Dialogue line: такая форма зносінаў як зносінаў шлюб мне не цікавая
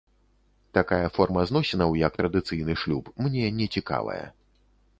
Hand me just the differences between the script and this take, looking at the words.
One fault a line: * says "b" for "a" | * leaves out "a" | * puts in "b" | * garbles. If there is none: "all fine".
* says "традыцыйны" for "зносінаў"